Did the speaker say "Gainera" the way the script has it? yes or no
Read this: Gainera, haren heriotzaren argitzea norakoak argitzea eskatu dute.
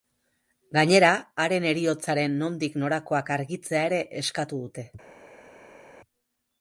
yes